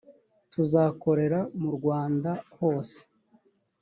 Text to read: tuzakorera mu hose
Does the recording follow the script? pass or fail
fail